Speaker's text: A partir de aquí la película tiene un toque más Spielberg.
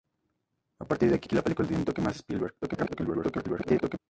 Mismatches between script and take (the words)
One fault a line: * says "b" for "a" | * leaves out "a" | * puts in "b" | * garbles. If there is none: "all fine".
* puts in "aquí"
* garbles